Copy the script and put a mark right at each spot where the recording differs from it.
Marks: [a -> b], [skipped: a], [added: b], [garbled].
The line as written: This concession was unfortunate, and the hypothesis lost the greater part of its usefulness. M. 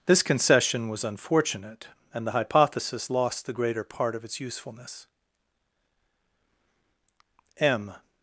This concession was unfortunate, and the hypothesis lost the greater part of its usefulness. M.